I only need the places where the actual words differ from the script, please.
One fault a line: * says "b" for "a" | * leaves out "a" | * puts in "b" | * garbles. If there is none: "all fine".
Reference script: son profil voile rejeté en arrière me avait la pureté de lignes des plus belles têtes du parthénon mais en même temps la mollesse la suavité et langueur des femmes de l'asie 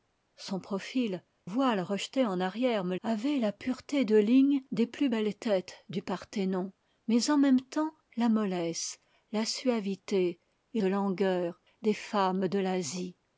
all fine